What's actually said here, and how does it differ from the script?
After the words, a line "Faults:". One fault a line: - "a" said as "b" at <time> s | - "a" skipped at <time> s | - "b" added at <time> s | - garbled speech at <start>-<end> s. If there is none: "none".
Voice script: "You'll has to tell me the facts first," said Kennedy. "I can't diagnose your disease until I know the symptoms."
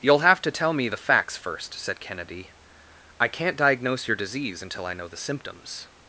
"You'll have to tell me the facts first," said Kennedy. "I can't diagnose your disease until I know the symptoms."
Faults:
- "has" said as "have" at 0.2 s